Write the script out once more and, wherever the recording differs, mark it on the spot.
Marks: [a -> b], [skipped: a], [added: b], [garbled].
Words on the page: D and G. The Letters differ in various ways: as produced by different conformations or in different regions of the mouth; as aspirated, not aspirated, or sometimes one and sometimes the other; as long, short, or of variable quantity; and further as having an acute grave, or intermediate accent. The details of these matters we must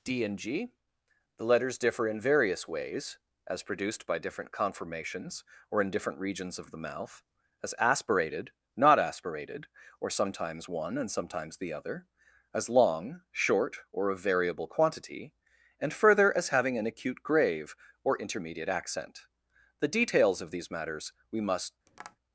D and G. The Letters differ in various ways: as produced by different conformations or in different regions of the mouth; as aspirated, not aspirated, or sometimes one and sometimes the other; as long, short, or of variable quantity; and further as having an acute grave, or intermediate accent. The details of these matters we must